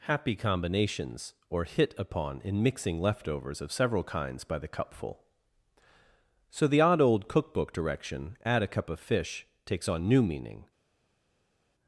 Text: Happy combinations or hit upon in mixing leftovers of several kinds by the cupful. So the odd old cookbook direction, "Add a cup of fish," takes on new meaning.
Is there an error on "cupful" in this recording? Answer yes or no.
no